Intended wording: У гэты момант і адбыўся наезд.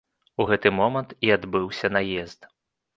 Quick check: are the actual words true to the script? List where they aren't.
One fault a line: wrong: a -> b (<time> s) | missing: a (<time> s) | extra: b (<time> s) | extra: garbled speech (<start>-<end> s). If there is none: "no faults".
no faults